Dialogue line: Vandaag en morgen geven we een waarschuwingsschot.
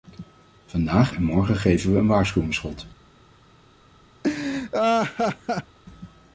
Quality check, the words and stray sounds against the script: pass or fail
fail